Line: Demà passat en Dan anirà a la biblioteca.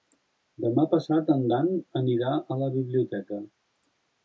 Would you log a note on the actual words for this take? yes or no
no